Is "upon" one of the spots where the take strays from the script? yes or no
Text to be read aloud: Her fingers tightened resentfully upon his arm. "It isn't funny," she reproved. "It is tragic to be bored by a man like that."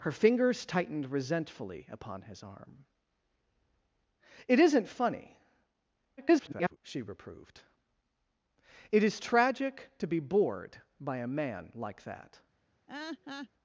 no